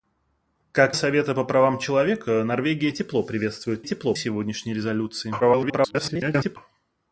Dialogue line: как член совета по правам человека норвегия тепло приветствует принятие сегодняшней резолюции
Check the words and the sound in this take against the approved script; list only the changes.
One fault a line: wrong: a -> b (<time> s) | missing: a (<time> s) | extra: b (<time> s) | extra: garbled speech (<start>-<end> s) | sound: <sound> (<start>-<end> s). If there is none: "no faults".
missing: член (0.9 s)
wrong: принятие -> тепло (3.8 s)
extra: garbled speech (5.4-6.6 s)